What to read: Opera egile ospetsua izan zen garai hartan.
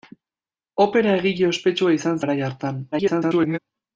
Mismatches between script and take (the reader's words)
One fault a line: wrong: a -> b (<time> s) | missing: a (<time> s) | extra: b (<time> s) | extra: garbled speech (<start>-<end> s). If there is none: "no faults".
missing: zen (2.2 s)
extra: garbled speech (2.9-3.6 s)